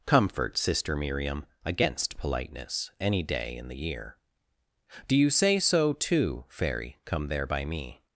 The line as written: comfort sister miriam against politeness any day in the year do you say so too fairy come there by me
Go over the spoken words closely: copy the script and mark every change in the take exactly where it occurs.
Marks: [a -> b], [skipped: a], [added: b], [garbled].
comfort sister miriam against politeness any day in the year do you say so too fairy come there by me